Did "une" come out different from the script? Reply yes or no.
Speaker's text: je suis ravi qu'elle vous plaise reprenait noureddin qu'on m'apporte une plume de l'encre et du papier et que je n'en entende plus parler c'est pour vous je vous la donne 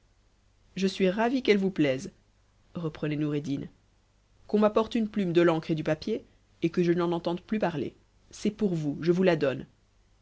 no